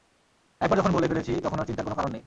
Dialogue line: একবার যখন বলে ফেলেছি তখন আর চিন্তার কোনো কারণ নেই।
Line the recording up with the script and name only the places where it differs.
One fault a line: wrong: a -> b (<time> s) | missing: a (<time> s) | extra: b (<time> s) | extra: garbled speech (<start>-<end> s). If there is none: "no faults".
no faults